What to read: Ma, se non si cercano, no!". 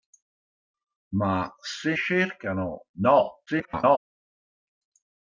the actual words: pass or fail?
fail